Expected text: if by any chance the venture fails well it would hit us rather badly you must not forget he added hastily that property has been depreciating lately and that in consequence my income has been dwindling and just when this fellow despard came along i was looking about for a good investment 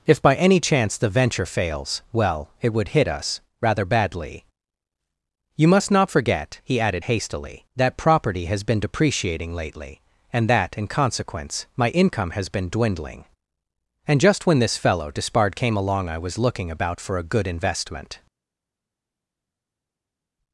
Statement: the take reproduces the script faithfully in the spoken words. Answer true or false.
true